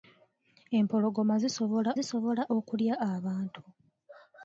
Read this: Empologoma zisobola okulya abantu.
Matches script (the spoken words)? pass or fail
fail